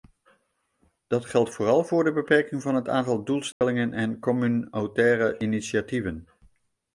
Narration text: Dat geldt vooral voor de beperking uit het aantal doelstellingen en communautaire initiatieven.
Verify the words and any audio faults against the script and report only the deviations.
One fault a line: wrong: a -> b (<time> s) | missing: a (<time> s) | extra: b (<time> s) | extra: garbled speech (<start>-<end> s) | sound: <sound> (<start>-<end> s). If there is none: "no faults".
wrong: uit -> van (2.6 s)
sound: dropout (3.5-3.6 s)